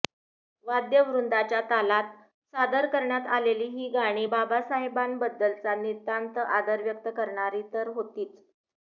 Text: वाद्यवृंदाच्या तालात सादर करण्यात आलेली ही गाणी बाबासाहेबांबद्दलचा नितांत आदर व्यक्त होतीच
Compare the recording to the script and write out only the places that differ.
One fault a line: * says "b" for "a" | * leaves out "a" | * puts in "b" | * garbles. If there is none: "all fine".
* puts in "करणारी तर"